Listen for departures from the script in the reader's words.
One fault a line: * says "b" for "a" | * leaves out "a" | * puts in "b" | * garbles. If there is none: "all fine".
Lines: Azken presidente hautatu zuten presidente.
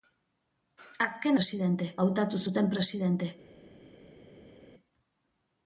all fine